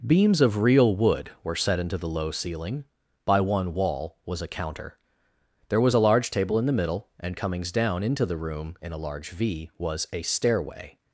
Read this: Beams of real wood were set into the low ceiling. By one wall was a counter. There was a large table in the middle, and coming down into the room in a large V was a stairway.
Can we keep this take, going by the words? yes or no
no